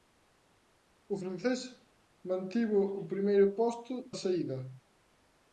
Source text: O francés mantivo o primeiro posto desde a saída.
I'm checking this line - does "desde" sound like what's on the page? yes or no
no